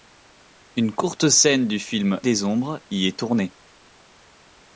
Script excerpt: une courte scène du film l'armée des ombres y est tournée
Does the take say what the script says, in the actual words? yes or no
no